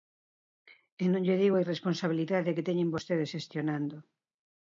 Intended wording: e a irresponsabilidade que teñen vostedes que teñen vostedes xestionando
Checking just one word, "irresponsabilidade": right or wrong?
wrong